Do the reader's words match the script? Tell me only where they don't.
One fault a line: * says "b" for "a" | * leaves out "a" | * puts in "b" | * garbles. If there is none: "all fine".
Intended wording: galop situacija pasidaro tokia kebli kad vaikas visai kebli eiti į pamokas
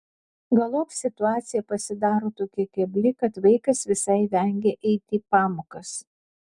* says "vengia" for "kebli"